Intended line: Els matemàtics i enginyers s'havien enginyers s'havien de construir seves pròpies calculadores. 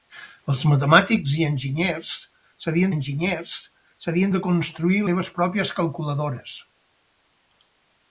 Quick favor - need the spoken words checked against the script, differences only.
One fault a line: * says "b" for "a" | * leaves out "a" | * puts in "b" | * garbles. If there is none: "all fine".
all fine